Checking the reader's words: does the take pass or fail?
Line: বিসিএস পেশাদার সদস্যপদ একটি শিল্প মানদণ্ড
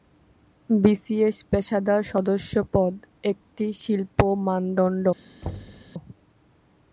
pass